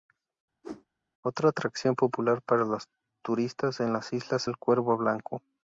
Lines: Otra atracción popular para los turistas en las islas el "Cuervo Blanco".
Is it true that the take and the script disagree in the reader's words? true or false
false